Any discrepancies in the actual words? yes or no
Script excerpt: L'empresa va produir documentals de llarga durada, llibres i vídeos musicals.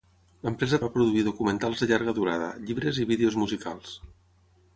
no